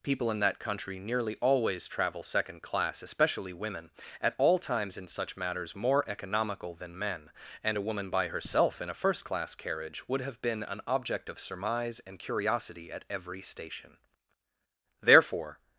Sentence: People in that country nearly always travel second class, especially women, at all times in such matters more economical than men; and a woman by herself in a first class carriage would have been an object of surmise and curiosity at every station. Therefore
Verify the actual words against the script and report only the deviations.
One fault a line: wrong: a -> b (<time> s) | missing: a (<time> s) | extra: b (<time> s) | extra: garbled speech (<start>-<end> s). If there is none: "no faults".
no faults